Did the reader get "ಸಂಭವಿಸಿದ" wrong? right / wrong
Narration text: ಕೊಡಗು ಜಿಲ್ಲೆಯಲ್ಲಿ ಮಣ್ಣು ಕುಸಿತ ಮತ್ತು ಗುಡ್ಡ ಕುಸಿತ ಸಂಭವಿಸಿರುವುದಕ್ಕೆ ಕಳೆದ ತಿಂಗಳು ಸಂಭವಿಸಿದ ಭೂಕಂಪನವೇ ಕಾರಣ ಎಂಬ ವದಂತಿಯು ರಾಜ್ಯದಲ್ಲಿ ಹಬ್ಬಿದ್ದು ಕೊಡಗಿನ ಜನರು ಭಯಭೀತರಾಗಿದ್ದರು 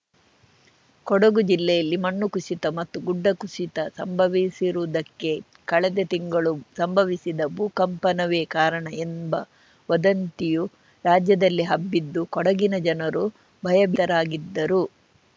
right